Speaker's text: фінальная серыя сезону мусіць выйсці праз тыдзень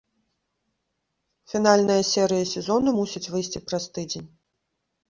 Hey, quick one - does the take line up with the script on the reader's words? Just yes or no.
yes